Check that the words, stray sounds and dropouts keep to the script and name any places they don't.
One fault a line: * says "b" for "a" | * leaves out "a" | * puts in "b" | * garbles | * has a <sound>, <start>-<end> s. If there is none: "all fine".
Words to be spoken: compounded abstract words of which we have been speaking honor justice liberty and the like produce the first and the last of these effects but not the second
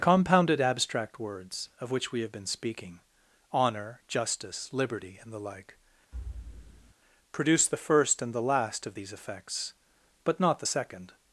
* has a thud, 6.1-6.9 s